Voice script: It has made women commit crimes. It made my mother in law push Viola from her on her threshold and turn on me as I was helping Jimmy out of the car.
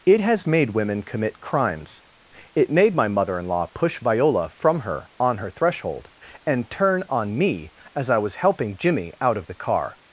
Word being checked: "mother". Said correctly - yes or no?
yes